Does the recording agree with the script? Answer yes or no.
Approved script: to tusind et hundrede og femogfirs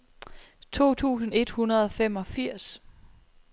yes